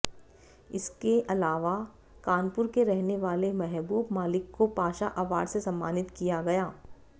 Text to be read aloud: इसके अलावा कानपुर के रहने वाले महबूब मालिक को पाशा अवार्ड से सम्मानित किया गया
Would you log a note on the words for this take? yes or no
no